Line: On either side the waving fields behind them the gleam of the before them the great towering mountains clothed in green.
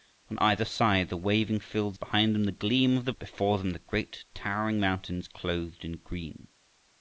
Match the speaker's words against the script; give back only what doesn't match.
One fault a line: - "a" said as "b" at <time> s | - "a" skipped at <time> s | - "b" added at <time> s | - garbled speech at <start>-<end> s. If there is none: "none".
none